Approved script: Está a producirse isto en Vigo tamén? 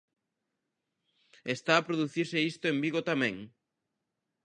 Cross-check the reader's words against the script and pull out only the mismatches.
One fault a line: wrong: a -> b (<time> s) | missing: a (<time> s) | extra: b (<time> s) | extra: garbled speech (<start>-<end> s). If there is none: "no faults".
no faults